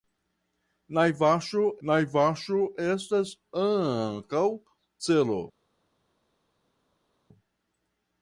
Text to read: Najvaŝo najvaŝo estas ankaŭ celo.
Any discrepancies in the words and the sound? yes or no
no